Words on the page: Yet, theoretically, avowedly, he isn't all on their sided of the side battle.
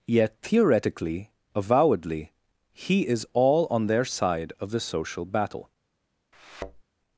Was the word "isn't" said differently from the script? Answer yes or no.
yes